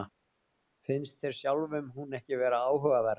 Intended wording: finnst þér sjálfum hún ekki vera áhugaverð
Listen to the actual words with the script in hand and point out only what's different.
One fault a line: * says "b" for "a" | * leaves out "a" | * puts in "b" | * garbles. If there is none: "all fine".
all fine